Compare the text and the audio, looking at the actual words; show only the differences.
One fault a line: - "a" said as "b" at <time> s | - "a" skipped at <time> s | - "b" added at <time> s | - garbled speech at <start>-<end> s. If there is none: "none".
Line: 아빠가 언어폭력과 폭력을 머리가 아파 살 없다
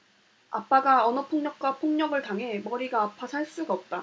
- "당해" added at 2.2 s
- "수가" added at 3.5 s